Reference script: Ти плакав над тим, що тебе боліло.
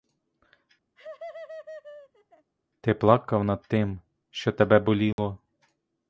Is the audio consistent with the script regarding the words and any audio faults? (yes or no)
no